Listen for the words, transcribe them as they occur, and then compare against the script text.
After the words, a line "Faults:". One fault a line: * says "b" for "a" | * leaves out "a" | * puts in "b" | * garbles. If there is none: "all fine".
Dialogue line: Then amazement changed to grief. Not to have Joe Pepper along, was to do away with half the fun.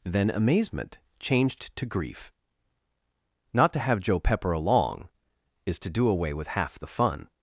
Then amazement changed to grief. Not to have Joe Pepper along, is to do away with half the fun.
Faults:
* says "is" for "was"